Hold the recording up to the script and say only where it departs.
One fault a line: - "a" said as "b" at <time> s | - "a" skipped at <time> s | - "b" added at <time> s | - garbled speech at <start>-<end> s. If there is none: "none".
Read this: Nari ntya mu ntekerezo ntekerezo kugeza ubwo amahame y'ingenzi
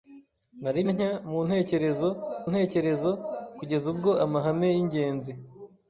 none